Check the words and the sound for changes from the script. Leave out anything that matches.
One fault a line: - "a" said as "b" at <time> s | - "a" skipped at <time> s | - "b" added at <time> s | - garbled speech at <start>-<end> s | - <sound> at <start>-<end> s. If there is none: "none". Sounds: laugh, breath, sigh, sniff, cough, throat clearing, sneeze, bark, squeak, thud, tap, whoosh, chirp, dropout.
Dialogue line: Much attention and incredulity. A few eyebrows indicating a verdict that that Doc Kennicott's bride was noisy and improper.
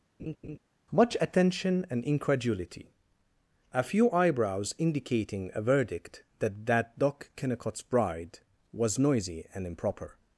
- laugh at 0.2-0.6 s